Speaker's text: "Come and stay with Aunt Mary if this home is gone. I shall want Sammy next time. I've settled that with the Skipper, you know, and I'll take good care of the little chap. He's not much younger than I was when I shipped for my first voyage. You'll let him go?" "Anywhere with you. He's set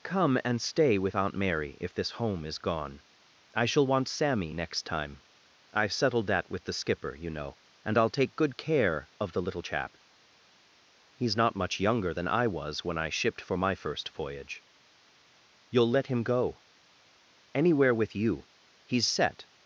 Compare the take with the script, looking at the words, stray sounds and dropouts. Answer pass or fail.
pass